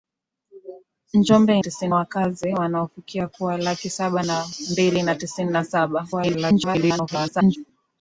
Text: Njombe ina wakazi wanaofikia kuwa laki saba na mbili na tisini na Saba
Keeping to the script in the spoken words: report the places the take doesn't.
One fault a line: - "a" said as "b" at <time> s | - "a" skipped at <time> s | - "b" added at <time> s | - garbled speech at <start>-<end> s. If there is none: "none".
- "ina" said as "tisini" at 1.6 s
- garbled speech at 6.1-7.6 s